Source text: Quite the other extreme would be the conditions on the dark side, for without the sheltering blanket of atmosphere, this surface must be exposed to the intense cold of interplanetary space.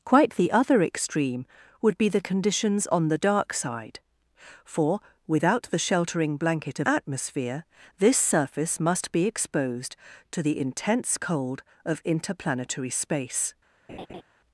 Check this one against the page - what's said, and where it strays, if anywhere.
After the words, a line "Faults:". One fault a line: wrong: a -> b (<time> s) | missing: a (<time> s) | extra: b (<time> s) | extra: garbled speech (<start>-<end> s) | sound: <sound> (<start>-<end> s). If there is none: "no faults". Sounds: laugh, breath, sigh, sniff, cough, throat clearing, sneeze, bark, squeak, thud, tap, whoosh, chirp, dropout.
Quite the other extreme would be the conditions on the dark side, for without the sheltering blanket of atmosphere, this surface must be exposed to the intense cold of interplanetary space.
Faults:
sound: laugh (13.9-14.2 s)